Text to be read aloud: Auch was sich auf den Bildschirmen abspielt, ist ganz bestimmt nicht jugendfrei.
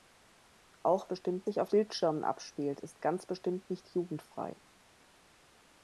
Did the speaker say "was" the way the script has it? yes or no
no